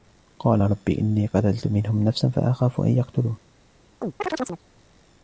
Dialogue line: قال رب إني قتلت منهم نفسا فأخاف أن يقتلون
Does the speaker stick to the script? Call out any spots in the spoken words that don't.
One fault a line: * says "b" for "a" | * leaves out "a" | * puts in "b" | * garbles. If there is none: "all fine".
all fine